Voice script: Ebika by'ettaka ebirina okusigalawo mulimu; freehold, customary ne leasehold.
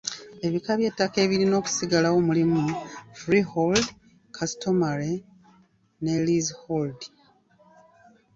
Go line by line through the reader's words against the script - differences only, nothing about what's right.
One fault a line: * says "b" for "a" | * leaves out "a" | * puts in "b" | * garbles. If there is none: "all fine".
all fine